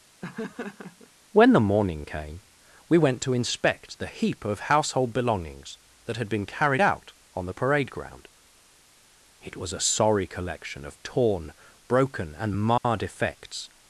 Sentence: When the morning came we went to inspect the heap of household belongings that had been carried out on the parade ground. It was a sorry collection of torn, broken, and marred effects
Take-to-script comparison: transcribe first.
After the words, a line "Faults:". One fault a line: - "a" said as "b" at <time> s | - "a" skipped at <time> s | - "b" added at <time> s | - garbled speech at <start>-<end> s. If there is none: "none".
When the morning came we went to inspect the heap of household belongings that had been carried out on the parade ground. It was a sorry collection of torn, broken, and marred effects
Faults:
none